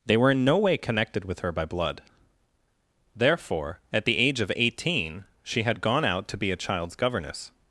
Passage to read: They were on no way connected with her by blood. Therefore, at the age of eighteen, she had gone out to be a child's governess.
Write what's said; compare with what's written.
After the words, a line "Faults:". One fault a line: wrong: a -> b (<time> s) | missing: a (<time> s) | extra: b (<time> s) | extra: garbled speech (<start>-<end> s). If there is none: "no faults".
They were in no way connected with her by blood. Therefore, at the age of eighteen, she had gone out to be a child's governess.
Faults:
wrong: on -> in (0.3 s)